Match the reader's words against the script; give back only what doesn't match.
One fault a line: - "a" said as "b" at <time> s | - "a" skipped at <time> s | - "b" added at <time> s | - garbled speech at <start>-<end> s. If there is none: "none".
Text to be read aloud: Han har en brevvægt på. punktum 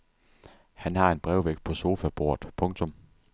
- "sofabordet" added at 1.7 s